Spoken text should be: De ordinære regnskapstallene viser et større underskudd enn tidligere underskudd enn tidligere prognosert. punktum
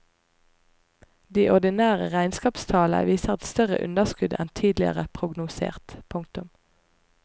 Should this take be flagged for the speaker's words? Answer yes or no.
yes